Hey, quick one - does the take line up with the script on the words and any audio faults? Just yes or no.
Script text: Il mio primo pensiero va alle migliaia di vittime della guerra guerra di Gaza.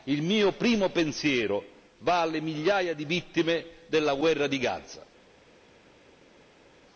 no